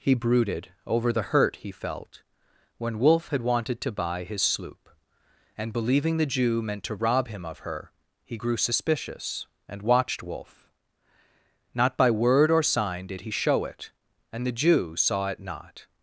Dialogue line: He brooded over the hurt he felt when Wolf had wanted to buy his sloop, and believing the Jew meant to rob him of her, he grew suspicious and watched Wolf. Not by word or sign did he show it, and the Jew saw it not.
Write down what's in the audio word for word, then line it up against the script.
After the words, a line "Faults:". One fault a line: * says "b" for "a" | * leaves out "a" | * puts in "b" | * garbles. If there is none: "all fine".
He brooded over the hurt he felt when Wolf had wanted to buy his sloop, and believing the Jew meant to rob him of her, he grew suspicious and watched Wolf. Not by word or sign did he show it, and the Jew saw it not.
Faults:
all fine